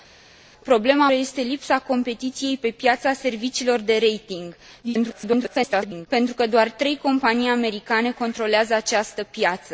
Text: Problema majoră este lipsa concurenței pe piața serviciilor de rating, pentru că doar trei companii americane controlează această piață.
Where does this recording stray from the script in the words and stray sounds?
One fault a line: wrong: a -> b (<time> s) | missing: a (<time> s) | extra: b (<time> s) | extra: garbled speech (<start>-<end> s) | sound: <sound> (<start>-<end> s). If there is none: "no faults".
missing: majoră (1.1 s)
extra: garbled speech (4.8-6.1 s)